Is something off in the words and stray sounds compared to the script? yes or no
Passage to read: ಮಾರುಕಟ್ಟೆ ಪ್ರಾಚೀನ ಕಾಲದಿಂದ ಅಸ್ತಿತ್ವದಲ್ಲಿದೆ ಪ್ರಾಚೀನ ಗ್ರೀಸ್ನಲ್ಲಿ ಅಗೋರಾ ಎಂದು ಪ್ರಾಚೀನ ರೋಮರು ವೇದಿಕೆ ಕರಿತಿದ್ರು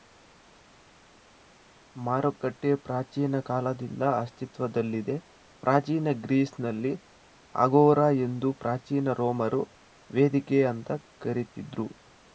yes